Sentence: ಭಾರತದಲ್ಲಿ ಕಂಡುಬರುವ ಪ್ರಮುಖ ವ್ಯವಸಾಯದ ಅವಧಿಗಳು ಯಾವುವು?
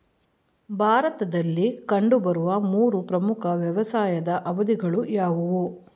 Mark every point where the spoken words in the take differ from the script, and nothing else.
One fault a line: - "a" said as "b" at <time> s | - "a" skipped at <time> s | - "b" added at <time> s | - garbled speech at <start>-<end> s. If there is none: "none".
- "ಮೂರು" added at 2.6 s